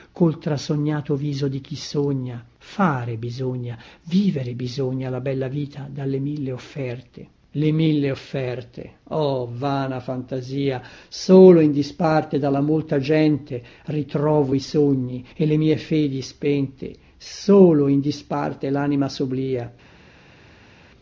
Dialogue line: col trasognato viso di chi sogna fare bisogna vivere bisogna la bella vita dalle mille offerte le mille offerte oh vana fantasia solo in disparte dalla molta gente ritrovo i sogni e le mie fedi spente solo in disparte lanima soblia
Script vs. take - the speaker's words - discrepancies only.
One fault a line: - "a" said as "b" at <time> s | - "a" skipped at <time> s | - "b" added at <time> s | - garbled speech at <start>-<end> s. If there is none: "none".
none